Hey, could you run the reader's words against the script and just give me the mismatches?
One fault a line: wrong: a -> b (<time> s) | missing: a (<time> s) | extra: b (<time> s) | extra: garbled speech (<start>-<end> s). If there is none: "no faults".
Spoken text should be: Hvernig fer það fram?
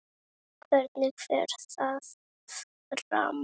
no faults